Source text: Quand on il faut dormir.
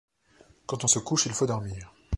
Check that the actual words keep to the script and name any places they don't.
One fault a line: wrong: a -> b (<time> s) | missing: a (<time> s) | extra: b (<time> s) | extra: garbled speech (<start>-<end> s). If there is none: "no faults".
extra: se couche (0.8 s)